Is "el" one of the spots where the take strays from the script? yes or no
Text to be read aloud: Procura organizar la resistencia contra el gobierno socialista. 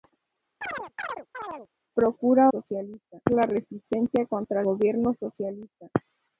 yes